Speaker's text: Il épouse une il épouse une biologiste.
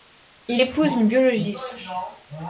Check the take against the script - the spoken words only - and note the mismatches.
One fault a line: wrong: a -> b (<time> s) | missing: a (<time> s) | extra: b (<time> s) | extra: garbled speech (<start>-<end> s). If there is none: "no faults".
missing: il épouse une (1.1 s)